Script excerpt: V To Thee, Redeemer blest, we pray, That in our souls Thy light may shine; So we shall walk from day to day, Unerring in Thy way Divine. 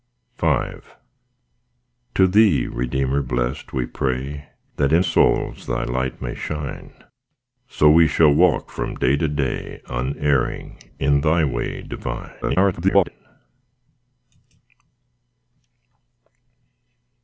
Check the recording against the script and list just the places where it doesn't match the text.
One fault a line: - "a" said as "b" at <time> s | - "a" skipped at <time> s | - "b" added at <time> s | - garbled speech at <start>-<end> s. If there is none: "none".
- "our" skipped at 5.0 s
- garbled speech at 12.4-13.1 s